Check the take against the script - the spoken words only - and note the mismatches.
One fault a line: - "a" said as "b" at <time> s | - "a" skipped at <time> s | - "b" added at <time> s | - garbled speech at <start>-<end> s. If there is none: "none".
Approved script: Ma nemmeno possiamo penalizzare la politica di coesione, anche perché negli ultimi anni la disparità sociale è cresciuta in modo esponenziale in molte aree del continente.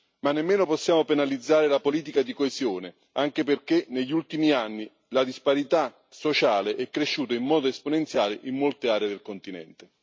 none